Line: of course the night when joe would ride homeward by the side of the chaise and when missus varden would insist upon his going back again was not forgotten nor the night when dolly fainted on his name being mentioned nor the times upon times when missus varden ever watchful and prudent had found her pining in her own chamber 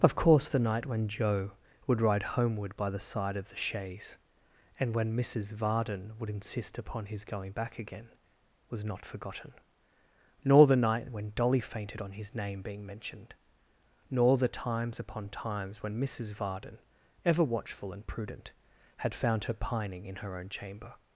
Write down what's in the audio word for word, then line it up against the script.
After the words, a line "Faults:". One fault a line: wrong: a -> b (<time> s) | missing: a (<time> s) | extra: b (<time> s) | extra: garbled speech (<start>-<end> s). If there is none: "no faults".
of course the night when joe would ride homeward by the side of the chaise and when missus varden would insist upon his going back again was not forgotten nor the night when dolly fainted on his name being mentioned nor the times upon times when missus varden ever watchful and prudent had found her pining in her own chamber
Faults:
no faults